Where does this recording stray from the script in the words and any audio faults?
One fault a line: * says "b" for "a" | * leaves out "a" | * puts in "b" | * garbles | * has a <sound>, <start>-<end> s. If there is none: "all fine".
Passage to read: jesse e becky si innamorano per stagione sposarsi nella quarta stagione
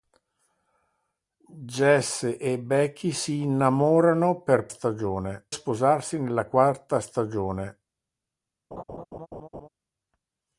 * has a laugh, 8.7-9.7 s